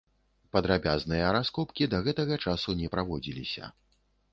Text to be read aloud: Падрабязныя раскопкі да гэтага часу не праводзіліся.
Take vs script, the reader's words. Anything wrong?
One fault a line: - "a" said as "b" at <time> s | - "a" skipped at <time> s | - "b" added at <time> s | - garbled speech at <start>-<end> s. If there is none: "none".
none